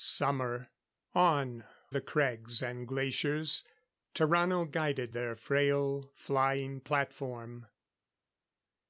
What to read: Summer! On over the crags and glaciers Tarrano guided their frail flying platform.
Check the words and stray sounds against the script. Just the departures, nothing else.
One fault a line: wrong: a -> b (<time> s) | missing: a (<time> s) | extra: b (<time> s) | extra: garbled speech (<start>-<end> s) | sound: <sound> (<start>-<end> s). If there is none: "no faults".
missing: over (1.6 s)